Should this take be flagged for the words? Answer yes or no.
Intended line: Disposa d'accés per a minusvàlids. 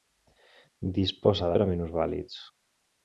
yes